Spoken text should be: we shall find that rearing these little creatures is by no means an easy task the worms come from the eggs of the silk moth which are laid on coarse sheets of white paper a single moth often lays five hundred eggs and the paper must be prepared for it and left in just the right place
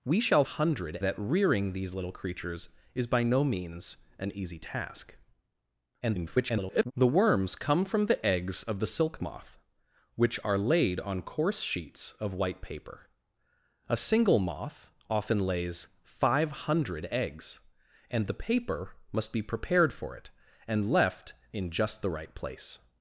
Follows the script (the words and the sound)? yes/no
no